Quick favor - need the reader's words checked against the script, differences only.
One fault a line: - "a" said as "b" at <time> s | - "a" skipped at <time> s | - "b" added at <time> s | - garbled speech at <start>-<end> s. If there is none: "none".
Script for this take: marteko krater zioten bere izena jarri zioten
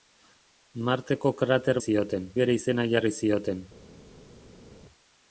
none